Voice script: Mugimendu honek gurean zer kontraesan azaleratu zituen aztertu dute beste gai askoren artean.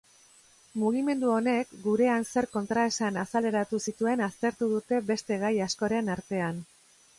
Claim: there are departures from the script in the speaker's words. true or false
false